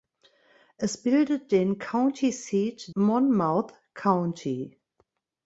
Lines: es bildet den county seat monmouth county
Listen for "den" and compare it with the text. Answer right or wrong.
right